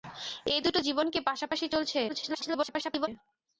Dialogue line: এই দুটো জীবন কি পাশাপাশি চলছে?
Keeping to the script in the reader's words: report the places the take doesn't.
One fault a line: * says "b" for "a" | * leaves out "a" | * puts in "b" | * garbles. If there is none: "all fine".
* garbles